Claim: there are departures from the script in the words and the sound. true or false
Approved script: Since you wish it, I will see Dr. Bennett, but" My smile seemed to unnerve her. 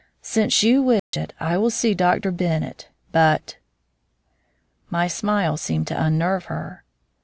true